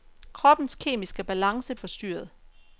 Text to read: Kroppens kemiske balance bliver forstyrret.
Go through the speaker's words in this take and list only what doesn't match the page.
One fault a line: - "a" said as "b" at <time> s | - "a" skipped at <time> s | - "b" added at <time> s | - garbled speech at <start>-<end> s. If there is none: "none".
- "bliver" skipped at 1.8 s